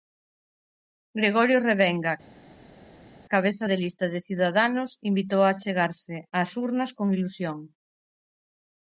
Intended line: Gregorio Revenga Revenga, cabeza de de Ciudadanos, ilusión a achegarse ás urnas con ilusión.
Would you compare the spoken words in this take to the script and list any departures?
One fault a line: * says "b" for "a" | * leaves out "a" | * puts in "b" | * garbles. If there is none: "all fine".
* leaves out "Revenga"
* puts in "lista"
* says "invitou" for "ilusión"